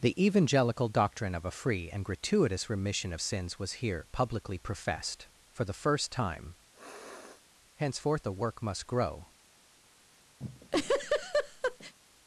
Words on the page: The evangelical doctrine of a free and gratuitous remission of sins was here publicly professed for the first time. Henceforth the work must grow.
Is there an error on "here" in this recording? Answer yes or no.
no